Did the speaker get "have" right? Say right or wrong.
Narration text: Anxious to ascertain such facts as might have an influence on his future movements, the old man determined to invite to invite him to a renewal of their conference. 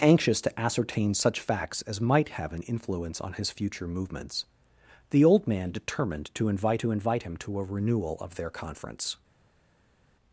right